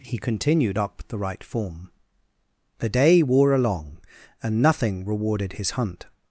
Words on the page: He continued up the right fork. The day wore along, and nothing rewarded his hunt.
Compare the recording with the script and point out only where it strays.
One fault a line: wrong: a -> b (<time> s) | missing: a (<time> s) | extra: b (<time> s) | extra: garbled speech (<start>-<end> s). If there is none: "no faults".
wrong: fork -> form (1.4 s)